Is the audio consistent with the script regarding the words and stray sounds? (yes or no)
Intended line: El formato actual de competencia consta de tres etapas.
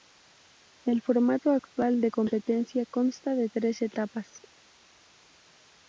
yes